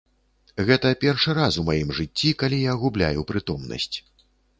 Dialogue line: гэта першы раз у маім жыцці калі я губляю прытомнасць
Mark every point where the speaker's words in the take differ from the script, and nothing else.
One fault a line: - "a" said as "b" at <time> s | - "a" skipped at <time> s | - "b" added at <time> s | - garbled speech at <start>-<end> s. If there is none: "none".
none